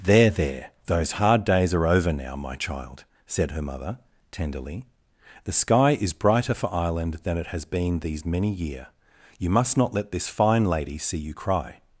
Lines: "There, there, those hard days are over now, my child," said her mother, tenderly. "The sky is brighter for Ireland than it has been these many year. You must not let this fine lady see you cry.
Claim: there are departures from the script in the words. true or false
false